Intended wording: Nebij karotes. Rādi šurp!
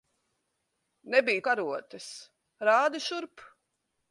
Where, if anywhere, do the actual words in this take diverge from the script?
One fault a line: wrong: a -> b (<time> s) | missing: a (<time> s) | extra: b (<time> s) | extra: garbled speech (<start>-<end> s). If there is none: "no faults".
no faults